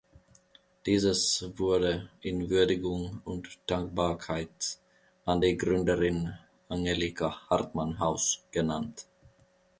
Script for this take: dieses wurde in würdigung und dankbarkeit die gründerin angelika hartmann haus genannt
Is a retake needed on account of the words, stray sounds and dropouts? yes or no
yes